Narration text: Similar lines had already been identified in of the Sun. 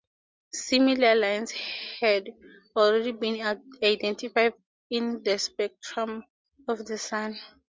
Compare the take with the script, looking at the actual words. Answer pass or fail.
fail